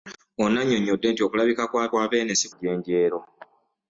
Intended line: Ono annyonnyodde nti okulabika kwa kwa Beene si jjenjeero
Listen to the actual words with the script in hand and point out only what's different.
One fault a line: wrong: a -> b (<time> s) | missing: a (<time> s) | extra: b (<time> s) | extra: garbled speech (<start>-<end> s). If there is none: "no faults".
no faults